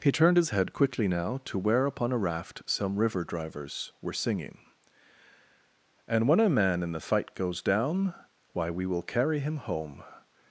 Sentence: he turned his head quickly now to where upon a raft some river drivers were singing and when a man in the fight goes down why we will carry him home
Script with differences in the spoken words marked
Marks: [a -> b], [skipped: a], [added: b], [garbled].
he turned his head quickly now to where upon a raft some river drivers were singing and when a man in the fight goes down why we will carry him home